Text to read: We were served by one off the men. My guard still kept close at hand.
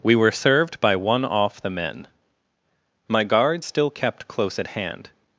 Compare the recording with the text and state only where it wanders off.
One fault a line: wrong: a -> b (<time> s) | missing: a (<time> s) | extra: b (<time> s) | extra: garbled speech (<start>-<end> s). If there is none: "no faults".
no faults